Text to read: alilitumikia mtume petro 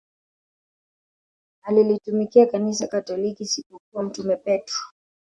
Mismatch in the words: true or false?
true